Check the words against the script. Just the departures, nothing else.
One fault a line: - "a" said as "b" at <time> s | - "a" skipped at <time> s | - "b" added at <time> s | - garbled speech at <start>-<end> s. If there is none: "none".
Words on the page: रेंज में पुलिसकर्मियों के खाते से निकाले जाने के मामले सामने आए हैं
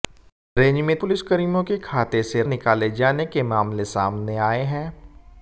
none